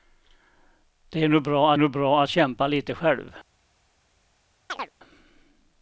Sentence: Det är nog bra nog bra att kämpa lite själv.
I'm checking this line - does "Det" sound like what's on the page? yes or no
yes